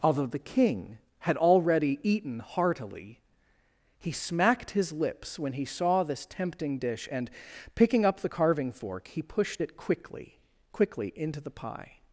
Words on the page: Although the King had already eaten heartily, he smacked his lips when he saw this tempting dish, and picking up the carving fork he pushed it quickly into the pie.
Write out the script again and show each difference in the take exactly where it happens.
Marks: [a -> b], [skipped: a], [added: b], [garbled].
Although the King had already eaten heartily, he smacked his lips when he saw this tempting dish, and picking up the carving fork he pushed it quickly [added: quickly] into the pie.